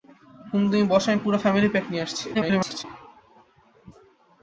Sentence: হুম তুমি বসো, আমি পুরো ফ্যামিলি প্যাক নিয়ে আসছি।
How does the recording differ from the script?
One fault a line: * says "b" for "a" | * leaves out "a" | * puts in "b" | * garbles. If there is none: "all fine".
* garbles